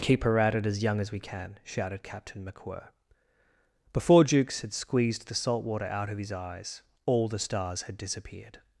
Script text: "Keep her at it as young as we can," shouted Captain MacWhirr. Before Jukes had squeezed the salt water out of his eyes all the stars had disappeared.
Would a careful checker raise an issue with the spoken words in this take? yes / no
no